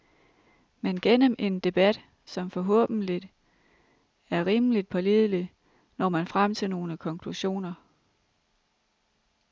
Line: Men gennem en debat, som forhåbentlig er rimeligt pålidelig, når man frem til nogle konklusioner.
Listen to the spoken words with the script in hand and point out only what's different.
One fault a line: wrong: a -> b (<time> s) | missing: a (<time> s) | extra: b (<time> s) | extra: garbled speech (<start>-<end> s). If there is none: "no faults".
no faults